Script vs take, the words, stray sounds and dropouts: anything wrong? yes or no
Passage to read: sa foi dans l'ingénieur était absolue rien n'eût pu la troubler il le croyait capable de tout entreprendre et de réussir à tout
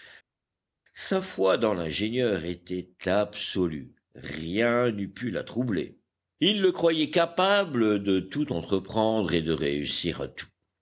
no